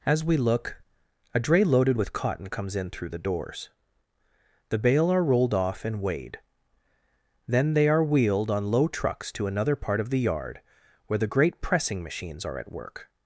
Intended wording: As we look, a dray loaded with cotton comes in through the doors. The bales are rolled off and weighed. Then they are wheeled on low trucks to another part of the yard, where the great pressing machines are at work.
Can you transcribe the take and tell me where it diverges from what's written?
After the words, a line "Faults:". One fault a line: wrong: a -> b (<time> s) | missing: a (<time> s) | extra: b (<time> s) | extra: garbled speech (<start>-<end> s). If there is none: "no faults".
As we look, a dray loaded with cotton comes in through the doors. The bale are rolled off and weighed. Then they are wheeled on low trucks to another part of the yard, where the great pressing machines are at work.
Faults:
wrong: bales -> bale (4.8 s)